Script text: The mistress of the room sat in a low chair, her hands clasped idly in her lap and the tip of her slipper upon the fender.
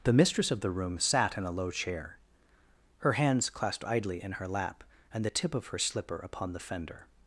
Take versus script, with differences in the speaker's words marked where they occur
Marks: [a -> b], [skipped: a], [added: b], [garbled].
The mistress of the room sat in a low chair, her hands clasped idly in her lap and the tip of her slipper upon the fender.